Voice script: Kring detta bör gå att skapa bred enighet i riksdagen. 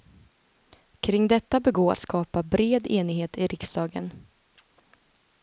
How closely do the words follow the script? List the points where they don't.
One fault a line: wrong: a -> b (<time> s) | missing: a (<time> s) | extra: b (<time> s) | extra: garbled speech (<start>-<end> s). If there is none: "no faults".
no faults